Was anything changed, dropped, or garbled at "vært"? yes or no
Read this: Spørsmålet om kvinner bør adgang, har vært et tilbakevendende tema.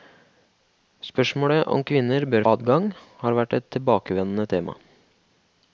no